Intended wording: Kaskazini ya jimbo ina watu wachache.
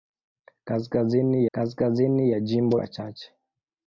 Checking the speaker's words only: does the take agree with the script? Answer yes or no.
no